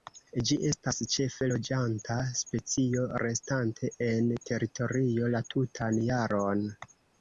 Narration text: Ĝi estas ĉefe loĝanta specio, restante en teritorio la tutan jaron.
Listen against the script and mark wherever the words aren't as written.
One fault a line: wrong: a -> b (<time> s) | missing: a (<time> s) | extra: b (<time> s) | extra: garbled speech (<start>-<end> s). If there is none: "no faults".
no faults